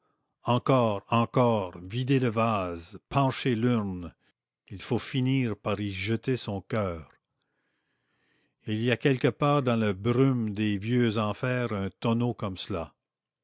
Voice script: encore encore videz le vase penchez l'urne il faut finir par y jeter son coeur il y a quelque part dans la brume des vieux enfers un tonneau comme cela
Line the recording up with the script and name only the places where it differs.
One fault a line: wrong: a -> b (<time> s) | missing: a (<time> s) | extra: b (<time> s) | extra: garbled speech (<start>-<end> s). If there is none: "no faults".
no faults